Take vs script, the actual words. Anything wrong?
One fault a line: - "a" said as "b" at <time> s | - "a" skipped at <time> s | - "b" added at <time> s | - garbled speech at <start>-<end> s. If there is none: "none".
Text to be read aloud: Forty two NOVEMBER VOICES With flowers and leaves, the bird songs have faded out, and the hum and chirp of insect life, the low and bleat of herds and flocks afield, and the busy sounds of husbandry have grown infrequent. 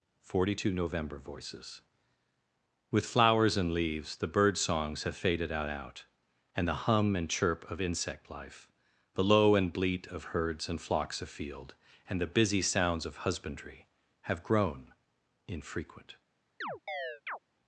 - "out" added at 5.7 s